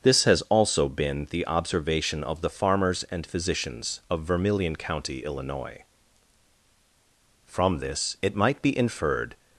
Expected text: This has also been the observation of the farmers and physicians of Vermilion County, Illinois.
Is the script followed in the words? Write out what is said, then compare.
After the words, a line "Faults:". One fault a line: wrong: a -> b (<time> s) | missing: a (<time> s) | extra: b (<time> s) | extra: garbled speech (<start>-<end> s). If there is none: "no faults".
This has also been the observation of the farmers and physicians of Vermilion County, Illinois. From this it might be inferred
Faults:
extra: From this it might be inferred (7.5 s)